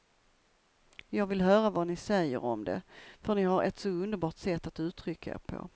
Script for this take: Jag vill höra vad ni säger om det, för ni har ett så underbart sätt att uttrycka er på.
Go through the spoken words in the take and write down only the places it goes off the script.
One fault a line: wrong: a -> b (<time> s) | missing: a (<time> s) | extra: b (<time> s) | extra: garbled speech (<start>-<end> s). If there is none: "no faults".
no faults